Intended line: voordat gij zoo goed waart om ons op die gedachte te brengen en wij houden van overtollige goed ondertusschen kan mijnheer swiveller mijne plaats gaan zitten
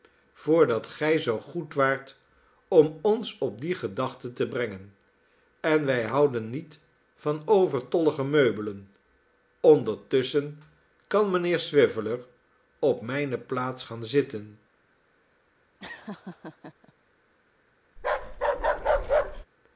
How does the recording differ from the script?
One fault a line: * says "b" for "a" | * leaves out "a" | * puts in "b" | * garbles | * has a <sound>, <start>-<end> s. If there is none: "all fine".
* puts in "niet"
* says "meubelen" for "goed"
* puts in "op"
* has a laugh, 15.8-16.9 s
* has a bark, 18.0-19.5 s